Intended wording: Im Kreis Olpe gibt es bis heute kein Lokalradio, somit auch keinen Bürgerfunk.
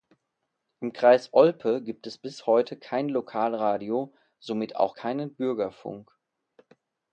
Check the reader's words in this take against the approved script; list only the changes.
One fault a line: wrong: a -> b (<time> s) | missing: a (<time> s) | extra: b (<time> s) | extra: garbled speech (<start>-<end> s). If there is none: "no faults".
no faults